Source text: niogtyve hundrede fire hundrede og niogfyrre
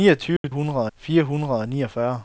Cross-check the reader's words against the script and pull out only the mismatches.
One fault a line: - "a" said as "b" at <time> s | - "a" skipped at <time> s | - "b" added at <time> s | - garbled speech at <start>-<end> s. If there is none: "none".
none